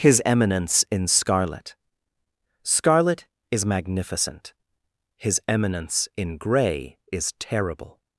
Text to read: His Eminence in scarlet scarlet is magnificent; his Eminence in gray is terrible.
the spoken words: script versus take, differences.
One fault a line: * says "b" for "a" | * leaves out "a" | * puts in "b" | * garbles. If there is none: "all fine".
all fine